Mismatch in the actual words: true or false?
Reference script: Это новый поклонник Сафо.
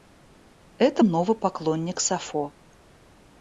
false